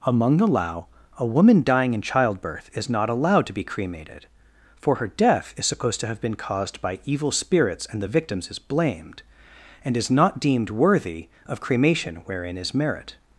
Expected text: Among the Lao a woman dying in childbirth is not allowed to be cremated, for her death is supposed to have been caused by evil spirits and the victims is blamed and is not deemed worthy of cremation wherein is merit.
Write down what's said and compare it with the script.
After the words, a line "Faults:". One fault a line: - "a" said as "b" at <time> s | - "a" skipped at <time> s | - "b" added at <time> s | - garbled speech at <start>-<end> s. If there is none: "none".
Among the Lao a woman dying in childbirth is not allowed to be cremated, for her death is supposed to have been caused by evil spirits and the victims is blamed and is not deemed worthy of cremation wherein is merit.
Faults:
none